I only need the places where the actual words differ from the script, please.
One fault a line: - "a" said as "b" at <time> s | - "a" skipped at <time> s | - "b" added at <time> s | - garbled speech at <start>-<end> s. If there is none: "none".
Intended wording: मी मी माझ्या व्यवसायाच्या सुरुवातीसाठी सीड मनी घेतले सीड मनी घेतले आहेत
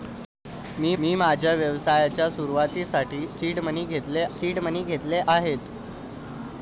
none